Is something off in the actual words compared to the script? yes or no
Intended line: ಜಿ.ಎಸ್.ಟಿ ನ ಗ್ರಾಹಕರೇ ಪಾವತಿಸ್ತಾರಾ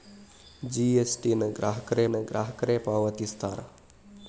yes